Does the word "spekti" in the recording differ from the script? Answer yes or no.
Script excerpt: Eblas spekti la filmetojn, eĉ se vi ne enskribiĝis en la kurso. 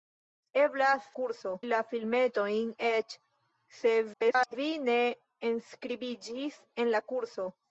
yes